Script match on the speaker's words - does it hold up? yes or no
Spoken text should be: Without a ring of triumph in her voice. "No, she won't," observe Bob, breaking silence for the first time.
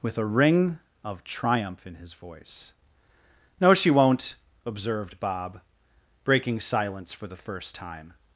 no